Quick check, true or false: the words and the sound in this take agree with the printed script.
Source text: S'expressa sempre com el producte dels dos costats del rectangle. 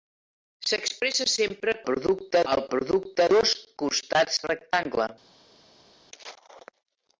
false